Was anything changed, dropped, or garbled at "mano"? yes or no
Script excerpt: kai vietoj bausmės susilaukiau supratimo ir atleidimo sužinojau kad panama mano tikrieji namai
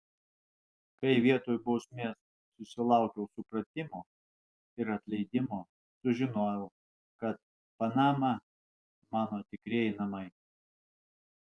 no